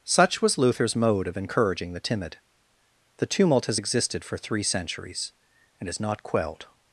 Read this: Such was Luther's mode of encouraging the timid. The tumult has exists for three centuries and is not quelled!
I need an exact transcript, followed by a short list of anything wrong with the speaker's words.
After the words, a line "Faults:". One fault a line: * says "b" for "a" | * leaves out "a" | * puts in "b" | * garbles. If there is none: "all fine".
Such was Luther's mode of encouraging the timid. The tumult has existed for three centuries and is not quelled!
Faults:
* says "existed" for "exists"